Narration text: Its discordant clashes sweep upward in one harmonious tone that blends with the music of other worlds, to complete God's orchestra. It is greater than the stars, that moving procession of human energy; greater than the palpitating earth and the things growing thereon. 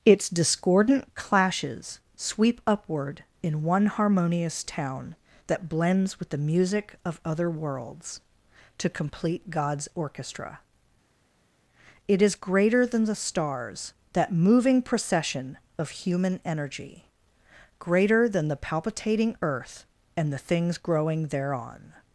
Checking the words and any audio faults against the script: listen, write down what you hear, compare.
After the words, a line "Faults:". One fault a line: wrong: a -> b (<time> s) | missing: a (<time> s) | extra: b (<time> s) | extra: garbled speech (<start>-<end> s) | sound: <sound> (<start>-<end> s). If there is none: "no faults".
Its discordant clashes sweep upward in one harmonious town that blends with the music of other worlds, to complete God's orchestra. It is greater than the stars, that moving procession of human energy; greater than the palpitating earth and the things growing thereon.
Faults:
wrong: tone -> town (4.6 s)